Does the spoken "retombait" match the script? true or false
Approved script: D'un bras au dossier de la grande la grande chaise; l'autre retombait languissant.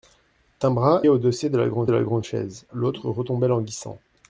true